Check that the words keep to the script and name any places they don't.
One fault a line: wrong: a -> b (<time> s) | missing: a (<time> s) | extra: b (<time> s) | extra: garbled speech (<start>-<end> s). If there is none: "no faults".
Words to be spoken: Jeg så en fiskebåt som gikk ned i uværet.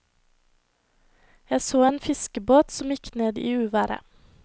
no faults